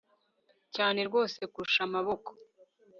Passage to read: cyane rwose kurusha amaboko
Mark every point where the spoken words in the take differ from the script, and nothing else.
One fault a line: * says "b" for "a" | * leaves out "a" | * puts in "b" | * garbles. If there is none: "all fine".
all fine